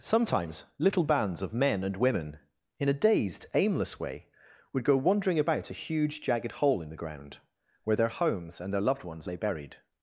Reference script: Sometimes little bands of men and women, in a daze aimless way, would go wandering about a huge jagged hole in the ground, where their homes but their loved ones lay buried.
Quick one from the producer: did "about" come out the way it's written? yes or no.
yes